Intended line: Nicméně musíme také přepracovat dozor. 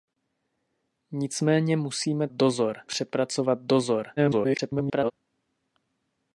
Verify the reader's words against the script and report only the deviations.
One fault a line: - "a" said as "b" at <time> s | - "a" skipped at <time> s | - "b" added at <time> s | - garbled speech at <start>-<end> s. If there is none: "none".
- "také" said as "dozor" at 2.3 s
- garbled speech at 4.2-5.1 s